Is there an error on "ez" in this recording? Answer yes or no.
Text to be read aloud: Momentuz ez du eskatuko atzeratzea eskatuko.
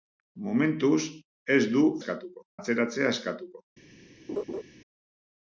no